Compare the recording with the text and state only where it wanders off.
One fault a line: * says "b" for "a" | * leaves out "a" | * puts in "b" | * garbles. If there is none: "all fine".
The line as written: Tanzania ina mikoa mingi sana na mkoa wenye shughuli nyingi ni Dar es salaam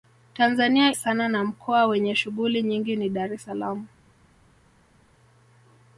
* leaves out "ina mikoa mingi"